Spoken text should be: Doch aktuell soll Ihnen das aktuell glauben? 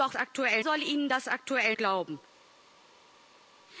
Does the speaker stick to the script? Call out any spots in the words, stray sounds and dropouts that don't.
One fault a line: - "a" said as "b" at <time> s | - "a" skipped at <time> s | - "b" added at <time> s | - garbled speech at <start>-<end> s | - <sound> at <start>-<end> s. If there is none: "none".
none